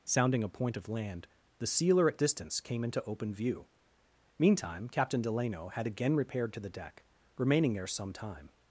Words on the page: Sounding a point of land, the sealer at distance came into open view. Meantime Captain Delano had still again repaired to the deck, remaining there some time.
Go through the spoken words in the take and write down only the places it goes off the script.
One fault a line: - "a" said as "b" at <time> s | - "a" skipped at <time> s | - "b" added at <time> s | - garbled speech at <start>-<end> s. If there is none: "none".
- "still" skipped at 5.8 s